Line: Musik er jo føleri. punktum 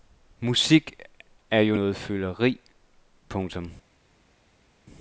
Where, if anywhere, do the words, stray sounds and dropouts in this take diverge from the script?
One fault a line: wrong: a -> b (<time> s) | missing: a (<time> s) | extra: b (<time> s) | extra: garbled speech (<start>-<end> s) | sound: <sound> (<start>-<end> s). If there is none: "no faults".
extra: noget (1.7 s)